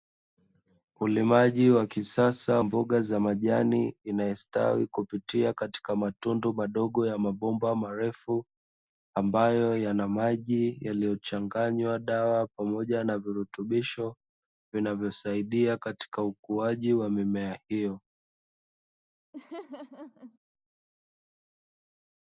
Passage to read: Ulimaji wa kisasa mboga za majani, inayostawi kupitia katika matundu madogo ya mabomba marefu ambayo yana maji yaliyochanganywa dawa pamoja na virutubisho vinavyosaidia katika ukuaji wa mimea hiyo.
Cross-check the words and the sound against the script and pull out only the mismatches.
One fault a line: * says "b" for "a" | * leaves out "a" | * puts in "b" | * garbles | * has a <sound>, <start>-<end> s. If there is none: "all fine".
* has a laugh, 19.3-20.4 s